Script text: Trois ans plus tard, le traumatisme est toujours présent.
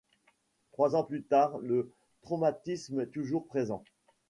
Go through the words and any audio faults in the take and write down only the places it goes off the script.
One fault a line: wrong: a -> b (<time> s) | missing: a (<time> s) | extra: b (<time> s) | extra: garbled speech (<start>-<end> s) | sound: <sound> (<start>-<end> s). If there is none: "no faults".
no faults